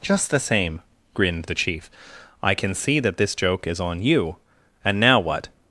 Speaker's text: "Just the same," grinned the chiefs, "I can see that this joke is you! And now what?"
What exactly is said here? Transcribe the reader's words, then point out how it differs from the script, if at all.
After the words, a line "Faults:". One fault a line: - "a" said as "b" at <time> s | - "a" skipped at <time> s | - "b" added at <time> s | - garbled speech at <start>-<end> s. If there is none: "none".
"Just the same," grinned the chief, "I can see that this joke is on you! And now what?"
Faults:
- "chiefs" said as "chief" at 1.5 s
- "on" added at 3.8 s